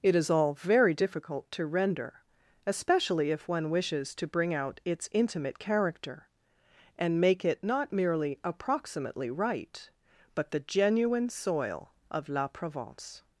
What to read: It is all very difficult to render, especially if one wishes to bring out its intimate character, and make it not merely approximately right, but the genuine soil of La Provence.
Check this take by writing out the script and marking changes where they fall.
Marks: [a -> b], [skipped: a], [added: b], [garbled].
It is all very difficult to render, especially if one wishes to bring out its intimate character, and make it not merely approximately right, but the genuine soil of La Provence.